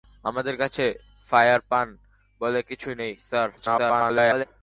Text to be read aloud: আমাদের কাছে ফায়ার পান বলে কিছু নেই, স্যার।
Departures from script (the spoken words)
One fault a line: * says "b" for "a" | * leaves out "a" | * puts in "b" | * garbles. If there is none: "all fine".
* garbles